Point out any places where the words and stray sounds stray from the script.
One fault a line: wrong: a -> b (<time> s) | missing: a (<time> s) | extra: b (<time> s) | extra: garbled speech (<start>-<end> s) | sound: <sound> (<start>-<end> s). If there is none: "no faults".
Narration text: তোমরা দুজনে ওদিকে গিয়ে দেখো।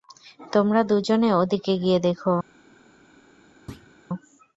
sound: thud (3.7-3.9 s)